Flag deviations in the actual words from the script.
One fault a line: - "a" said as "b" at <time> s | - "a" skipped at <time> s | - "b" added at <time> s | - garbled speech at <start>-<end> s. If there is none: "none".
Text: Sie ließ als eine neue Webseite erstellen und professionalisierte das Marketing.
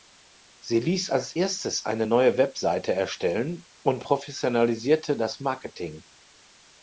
- "erstes" added at 1.3 s